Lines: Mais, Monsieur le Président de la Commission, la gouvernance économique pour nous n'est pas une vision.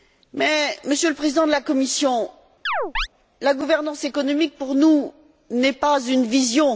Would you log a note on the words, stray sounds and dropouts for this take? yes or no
yes